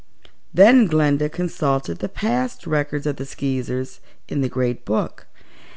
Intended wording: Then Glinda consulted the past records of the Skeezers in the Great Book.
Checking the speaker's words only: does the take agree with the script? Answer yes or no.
yes